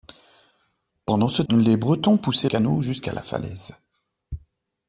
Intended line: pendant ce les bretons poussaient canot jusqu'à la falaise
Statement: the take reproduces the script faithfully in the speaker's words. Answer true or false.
true